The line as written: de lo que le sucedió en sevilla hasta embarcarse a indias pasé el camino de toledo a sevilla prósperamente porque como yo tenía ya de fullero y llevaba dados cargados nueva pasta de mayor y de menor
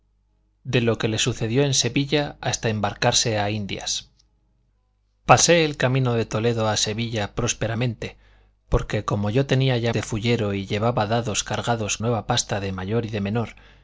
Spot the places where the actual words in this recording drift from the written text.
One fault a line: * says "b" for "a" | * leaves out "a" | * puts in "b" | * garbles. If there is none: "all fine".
all fine